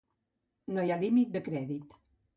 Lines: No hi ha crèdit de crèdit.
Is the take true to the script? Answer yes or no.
no